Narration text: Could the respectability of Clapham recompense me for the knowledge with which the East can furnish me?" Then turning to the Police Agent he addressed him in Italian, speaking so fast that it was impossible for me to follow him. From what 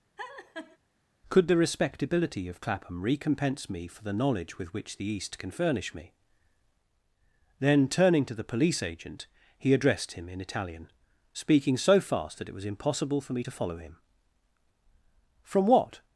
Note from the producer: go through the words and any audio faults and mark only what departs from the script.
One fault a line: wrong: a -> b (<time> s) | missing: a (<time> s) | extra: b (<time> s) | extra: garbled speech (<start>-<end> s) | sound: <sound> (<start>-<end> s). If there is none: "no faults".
sound: laugh (0.2-0.8 s)